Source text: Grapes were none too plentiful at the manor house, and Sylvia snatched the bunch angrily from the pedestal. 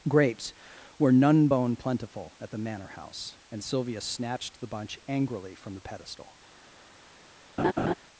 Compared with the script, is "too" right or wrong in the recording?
wrong